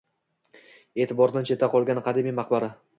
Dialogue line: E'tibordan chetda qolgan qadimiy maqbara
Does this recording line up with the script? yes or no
yes